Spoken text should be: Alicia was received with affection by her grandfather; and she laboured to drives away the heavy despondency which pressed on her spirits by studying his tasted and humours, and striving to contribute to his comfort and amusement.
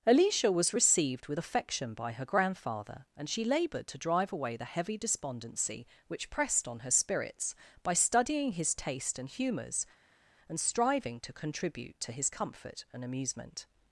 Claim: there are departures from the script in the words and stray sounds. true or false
true